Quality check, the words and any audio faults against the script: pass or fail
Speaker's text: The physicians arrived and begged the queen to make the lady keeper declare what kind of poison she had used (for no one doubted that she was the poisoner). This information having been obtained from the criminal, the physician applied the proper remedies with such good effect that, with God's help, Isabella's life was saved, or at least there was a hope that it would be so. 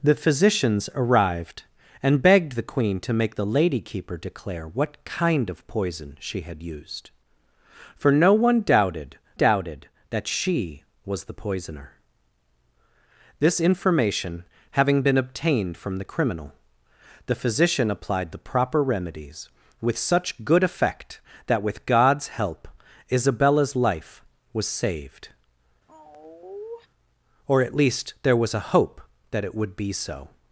fail